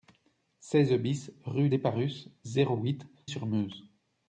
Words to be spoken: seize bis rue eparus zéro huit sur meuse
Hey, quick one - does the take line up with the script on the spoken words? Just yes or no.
yes